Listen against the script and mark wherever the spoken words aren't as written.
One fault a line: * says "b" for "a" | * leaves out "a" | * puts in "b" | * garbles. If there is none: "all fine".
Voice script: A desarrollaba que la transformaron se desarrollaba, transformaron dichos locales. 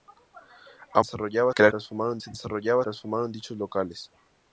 all fine